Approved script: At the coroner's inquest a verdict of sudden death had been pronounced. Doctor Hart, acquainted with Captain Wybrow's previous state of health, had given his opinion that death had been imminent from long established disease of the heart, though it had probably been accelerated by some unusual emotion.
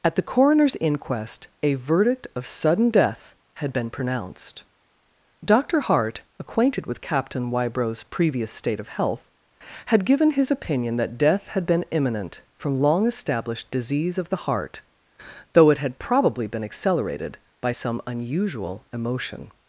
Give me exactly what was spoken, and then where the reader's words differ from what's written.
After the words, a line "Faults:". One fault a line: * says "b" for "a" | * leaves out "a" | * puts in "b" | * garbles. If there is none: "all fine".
At the coroner's inquest a verdict of sudden death had been pronounced. Doctor Hart, acquainted with Captain Wybrow's previous state of health, had given his opinion that death had been imminent from long established disease of the heart, though it had probably been accelerated by some unusual emotion.
Faults:
all fine